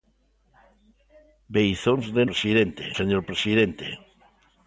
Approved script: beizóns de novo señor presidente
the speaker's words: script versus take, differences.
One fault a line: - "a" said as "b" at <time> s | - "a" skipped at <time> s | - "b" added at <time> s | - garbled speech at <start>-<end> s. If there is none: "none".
- "novo" said as "presidente" at 2.3 s